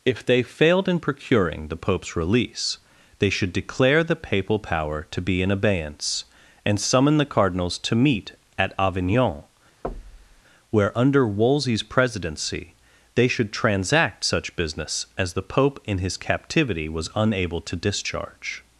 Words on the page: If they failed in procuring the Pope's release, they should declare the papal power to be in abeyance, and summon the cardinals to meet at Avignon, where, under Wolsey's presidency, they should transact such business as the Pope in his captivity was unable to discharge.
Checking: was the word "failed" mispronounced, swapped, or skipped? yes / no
no